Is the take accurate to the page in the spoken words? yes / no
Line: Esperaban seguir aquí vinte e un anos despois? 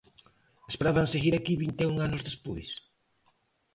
yes